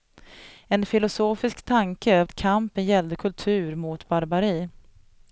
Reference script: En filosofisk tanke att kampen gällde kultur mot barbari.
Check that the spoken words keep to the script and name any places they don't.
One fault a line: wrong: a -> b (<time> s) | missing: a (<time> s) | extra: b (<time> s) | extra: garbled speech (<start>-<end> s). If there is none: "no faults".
no faults